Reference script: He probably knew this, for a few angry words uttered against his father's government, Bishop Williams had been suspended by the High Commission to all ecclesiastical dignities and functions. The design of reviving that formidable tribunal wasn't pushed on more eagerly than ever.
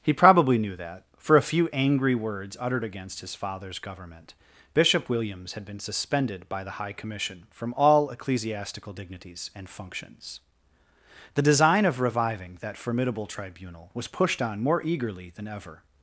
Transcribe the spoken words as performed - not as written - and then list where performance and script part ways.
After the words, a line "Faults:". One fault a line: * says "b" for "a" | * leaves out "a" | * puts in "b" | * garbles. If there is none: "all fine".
He probably knew that, for a few angry words uttered against his father's government, Bishop Williams had been suspended by the High Commission from all ecclesiastical dignities and functions. The design of reviving that formidable tribunal was pushed on more eagerly than ever.
Faults:
* says "that" for "this"
* says "from" for "to"
* says "was" for "wasn't"